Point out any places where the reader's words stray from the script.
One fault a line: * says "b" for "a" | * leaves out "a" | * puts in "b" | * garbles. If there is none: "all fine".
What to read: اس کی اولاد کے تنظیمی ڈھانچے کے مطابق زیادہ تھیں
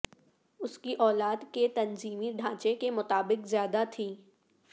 all fine